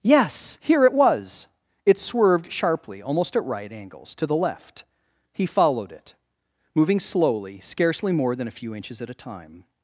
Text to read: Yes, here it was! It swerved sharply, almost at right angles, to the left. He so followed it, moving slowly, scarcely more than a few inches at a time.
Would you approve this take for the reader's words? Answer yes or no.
no